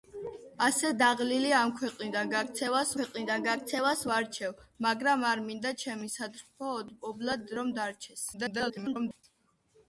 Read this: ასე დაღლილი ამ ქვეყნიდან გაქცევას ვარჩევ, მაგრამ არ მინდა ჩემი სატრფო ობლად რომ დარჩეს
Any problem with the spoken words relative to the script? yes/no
yes